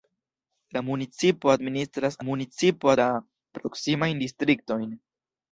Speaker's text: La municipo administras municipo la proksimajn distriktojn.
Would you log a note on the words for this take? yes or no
no